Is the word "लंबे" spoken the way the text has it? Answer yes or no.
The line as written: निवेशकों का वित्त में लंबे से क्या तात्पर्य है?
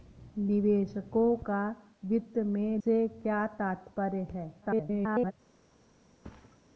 no